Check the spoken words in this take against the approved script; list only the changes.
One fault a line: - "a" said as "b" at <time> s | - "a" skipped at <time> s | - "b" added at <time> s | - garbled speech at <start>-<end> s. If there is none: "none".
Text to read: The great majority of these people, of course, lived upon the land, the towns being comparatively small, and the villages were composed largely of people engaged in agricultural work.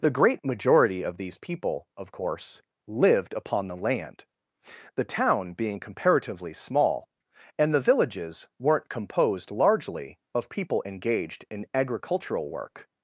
- "towns" said as "town" at 5.0 s
- "were" said as "weren't" at 8.6 s